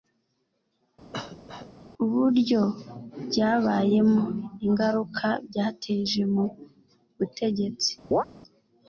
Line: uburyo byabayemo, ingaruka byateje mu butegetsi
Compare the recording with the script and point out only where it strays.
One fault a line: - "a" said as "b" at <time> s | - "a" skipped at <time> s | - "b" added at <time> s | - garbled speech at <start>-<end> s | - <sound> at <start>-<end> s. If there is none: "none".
- cough at 1.1-1.7 s
- chirp at 8.1-8.2 s